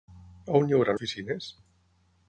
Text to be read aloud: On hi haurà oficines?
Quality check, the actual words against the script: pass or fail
pass